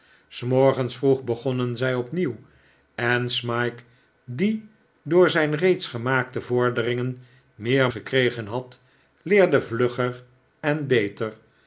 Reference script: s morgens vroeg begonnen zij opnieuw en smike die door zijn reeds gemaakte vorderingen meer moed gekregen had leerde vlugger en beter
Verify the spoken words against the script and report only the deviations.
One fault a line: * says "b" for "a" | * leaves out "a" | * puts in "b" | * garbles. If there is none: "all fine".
* leaves out "moed"